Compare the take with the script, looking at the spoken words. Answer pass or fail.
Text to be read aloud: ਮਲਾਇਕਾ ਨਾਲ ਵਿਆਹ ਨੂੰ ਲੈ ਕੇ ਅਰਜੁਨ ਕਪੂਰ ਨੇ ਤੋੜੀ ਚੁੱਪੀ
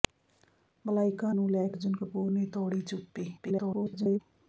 fail